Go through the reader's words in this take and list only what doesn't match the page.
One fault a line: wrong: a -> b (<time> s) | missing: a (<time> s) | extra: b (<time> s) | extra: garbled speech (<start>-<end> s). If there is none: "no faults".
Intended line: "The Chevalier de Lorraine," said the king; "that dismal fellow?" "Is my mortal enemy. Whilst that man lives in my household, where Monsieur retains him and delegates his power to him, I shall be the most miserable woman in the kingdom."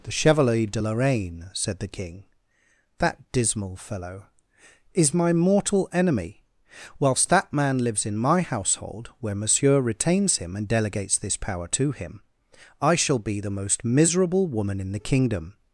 wrong: his -> this (11.2 s)